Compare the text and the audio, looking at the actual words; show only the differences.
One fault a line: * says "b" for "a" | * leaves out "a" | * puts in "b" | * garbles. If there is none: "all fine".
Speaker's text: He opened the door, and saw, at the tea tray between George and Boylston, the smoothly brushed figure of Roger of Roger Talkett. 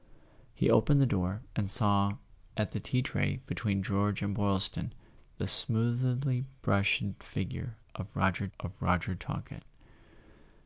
all fine